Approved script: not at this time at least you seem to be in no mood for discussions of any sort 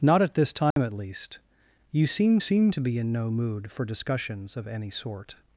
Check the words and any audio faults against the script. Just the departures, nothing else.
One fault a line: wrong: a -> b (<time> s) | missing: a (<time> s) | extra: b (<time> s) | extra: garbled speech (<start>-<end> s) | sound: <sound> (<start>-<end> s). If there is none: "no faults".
sound: dropout (0.7-0.8 s)
extra: seem (2.4 s)